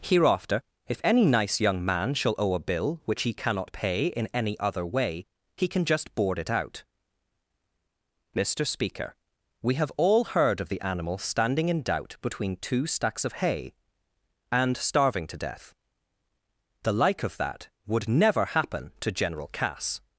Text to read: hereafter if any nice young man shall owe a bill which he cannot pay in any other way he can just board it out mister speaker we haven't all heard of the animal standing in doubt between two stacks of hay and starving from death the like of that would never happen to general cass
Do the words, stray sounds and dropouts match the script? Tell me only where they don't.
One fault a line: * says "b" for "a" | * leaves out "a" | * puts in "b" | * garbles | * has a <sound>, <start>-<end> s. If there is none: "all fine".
* says "have" for "haven't"
* says "to" for "from"